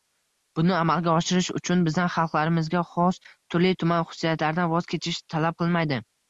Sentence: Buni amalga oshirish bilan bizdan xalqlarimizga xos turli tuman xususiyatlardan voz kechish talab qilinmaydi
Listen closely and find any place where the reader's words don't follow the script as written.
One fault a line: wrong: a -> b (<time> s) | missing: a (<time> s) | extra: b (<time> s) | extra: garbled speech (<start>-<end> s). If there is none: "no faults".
wrong: bilan -> uchun (1.6 s)